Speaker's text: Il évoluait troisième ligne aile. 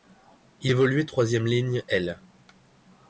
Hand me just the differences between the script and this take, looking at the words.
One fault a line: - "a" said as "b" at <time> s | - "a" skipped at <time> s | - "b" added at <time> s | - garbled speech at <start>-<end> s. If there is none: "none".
none